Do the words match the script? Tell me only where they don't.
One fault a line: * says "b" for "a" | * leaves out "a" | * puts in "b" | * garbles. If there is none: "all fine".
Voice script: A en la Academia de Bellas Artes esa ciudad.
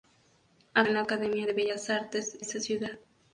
all fine